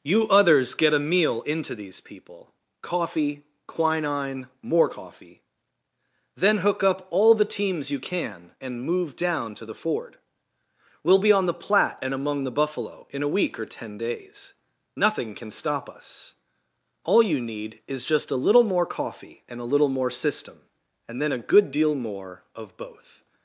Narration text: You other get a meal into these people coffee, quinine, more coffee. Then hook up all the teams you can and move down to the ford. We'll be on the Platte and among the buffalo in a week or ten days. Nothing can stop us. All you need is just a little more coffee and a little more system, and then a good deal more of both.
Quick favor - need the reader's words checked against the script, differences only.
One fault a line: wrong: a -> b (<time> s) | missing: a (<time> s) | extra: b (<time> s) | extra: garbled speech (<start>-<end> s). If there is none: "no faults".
wrong: other -> others (0.3 s)